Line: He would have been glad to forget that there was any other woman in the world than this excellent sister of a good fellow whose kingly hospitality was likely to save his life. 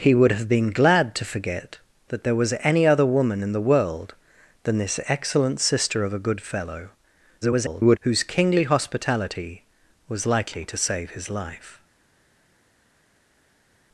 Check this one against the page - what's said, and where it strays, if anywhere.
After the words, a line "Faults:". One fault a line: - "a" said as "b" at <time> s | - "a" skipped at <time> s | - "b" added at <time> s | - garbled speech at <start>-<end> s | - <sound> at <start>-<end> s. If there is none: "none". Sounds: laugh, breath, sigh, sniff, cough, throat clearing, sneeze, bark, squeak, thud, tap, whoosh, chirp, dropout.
He would have been glad to forget that there was any other woman in the world than this excellent sister of a good fellow [garbled] whose kingly hospitality was likely to save his life.
Faults:
- garbled speech at 7.4-8.0 s